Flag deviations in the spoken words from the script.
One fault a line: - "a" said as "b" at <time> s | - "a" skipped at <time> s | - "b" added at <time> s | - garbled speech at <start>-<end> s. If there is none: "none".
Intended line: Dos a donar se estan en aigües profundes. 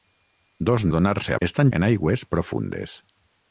none